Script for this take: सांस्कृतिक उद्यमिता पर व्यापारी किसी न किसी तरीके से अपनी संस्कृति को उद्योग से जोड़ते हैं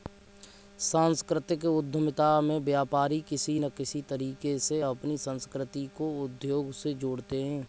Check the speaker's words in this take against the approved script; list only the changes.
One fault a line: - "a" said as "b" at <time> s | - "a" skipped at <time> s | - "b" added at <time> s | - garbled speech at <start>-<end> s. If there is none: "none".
- "पर" said as "में" at 2.4 s